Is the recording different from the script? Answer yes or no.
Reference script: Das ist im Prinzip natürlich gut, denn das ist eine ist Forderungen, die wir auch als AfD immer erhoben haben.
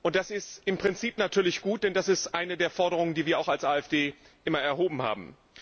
yes